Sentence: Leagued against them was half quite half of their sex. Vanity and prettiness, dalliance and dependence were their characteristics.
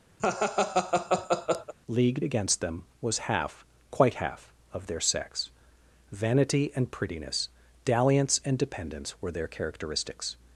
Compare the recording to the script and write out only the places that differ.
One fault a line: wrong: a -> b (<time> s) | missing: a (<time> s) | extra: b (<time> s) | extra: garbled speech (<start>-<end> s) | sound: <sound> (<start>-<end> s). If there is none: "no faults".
sound: laugh (0.2-1.7 s)